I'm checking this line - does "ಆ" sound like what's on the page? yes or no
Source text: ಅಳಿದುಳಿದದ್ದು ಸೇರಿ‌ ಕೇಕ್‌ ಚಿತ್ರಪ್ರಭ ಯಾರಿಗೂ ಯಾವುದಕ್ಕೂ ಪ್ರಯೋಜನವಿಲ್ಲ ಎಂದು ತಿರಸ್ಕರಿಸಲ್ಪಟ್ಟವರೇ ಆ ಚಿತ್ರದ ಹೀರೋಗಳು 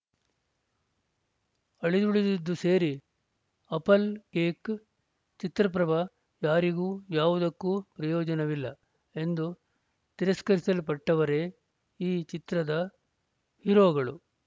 no